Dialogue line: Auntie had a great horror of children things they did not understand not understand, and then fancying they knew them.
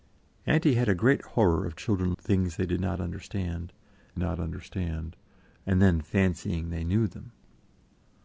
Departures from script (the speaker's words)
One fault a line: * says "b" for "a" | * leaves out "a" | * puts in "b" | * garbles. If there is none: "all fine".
all fine